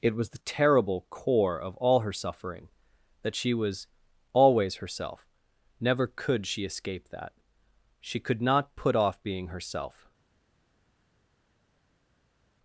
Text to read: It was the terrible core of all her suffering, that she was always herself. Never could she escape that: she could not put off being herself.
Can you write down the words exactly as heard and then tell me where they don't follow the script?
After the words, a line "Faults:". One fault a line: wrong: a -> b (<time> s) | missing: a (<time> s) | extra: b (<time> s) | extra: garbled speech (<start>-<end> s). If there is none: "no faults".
It was the terrible core of all her suffering, that she was always herself. Never could she escape that: she could not put off being herself.
Faults:
no faults